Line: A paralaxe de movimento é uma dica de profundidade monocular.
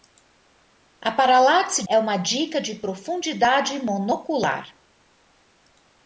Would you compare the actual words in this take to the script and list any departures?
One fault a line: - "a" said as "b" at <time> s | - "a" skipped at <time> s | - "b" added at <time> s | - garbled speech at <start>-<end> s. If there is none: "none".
- "de movimento" skipped at 1.8 s